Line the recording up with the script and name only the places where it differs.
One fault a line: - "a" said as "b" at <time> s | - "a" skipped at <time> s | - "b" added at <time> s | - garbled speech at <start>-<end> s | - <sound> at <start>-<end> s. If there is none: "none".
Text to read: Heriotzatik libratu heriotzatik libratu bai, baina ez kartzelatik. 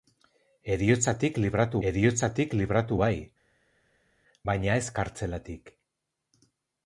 none